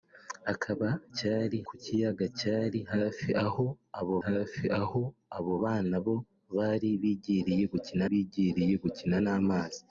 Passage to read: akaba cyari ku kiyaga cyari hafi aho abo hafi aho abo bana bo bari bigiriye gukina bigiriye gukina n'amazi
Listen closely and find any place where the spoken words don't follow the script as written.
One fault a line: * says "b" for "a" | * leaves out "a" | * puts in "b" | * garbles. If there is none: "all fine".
all fine